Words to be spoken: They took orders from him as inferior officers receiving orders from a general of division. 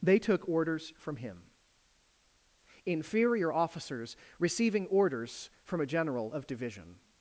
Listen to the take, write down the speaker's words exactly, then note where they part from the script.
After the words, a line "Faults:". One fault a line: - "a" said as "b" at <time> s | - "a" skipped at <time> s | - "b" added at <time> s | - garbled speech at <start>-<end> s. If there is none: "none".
They took orders from him inferior officers receiving orders from a general of division.
Faults:
- "as" skipped at 1.4 s